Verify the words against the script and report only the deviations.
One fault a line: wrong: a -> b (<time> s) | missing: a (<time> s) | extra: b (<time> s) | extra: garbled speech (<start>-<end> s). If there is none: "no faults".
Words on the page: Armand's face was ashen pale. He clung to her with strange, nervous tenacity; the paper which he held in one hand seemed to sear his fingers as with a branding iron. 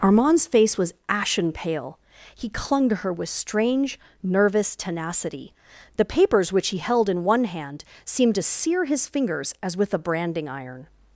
wrong: paper -> papers (6.0 s)